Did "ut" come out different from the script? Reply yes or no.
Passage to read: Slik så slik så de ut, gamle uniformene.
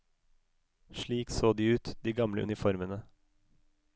yes